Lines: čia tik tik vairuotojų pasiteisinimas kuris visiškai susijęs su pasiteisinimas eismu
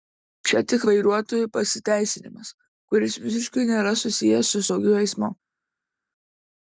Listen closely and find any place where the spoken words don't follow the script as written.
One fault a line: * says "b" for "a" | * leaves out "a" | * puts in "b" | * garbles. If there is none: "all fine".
* leaves out "tik"
* puts in "nėra"
* says "saugiu" for "pasiteisinimas"